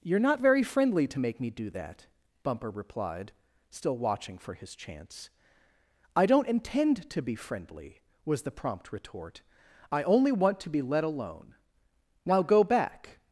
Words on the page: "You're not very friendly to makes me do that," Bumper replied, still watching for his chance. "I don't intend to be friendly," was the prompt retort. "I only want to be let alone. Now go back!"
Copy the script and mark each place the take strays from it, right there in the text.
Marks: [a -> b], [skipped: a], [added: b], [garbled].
"You're not very friendly to [makes -> make] me do that," Bumper replied, still watching for his chance. "I don't intend to be friendly," was the prompt retort. "I only want to be let alone. Now go back!"